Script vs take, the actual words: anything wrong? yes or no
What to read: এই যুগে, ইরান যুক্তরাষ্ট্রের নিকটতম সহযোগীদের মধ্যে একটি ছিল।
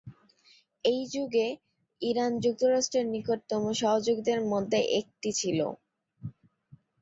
no